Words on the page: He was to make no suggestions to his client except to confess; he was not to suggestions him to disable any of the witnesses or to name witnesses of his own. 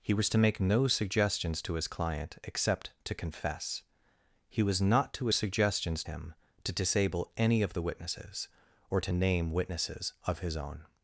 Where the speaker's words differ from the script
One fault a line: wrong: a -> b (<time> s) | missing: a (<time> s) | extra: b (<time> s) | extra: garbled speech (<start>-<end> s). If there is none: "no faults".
no faults